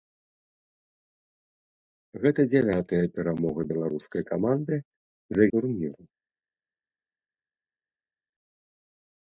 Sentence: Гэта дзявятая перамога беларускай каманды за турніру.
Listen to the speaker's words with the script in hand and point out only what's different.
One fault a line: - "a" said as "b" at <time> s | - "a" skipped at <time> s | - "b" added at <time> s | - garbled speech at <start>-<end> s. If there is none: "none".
none